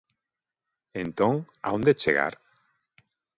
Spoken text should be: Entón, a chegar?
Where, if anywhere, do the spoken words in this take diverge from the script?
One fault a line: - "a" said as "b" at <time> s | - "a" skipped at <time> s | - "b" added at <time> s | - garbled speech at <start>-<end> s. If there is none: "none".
- "onde" added at 1.7 s